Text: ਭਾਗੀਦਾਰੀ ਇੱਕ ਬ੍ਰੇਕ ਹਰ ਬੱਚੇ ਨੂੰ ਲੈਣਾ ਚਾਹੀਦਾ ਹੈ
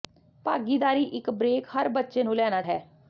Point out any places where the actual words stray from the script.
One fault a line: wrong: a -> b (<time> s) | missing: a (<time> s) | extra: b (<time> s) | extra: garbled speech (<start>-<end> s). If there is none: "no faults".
missing: ਚਾਹੀਦਾ (2.6 s)